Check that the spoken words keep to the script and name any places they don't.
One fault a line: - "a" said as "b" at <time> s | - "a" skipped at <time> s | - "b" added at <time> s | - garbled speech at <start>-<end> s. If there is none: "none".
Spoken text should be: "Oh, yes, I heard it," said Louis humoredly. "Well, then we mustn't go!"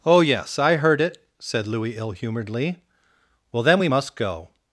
- "ill" added at 2.0 s
- "mustn't" said as "must" at 3.9 s